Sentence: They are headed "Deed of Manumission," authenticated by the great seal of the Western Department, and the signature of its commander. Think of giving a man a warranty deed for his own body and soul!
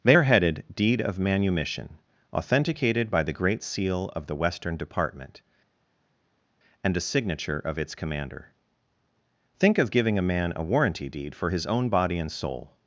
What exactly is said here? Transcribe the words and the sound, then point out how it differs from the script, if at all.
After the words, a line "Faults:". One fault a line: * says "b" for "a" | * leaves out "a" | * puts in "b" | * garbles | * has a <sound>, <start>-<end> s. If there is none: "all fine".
They are headed "Deed of Manumission," authenticated by the great seal of the Western Department, and a signature of its commander. Think of giving a man a warranty deed for his own body and soul!
Faults:
* says "a" for "the"